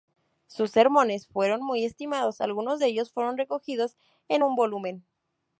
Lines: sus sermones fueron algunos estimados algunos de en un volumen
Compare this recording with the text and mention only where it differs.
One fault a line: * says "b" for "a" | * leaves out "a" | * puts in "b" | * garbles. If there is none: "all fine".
* says "muy" for "algunos"
* puts in "ellos fueron recogidos"